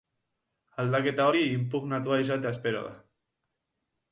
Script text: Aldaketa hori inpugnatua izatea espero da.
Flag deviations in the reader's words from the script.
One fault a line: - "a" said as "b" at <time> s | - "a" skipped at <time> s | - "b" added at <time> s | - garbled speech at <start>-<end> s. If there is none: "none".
none